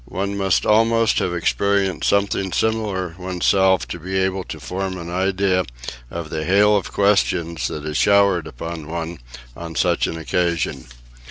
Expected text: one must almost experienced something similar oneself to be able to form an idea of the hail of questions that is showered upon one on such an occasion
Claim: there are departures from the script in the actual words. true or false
true